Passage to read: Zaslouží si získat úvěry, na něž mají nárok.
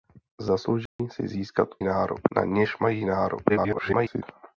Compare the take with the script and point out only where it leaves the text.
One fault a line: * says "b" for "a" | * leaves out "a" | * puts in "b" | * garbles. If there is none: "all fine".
* says "nárok" for "úvěry"
* garbles